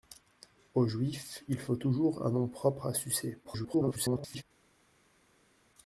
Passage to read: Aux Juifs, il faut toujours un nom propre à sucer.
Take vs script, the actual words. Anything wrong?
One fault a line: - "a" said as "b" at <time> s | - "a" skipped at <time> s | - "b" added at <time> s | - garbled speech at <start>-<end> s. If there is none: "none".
- garbled speech at 3.4-4.4 s